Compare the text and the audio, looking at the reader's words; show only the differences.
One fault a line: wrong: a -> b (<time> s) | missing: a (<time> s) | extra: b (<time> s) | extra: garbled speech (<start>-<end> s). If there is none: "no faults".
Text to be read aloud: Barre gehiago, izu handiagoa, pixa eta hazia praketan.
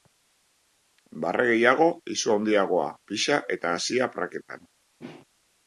no faults